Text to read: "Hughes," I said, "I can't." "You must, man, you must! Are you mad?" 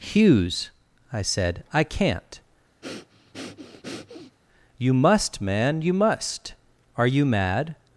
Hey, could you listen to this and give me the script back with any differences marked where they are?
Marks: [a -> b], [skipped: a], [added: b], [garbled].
"Hughes," I said, "I can't." "You must, man, you must! Are you mad?"